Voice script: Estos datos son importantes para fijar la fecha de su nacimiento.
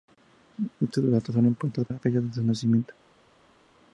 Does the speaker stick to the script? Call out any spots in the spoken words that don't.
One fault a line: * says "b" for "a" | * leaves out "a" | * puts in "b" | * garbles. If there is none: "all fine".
* leaves out "para fijar"